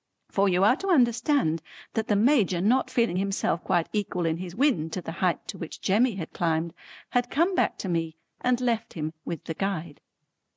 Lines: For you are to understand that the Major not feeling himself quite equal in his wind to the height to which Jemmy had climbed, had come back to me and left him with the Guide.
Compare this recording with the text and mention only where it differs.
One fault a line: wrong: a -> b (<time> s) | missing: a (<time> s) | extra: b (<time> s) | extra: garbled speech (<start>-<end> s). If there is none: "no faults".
no faults